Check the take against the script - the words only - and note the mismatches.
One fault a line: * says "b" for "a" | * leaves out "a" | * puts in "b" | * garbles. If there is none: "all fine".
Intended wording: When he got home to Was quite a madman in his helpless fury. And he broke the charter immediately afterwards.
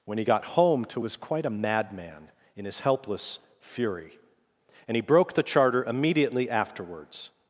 all fine